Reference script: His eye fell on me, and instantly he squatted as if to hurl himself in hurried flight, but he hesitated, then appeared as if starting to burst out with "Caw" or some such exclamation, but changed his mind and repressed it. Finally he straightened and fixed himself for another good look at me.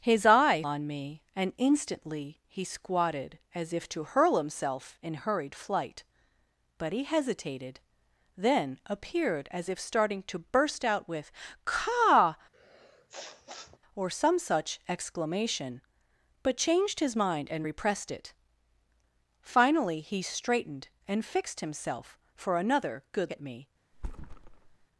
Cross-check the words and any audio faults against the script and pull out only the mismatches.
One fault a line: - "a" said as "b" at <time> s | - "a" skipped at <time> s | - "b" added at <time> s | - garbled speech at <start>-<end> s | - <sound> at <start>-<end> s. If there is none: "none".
- "fell" skipped at 0.6 s
- sniff at 12.5-13.8 s
- "look" skipped at 23.3 s
- thud at 23.9-24.9 s